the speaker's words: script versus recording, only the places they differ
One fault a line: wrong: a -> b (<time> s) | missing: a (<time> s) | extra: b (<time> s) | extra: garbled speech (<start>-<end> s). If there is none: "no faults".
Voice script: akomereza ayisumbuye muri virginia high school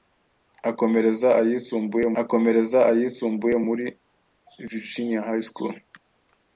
extra: akomereza ayisumbuye (2.2 s)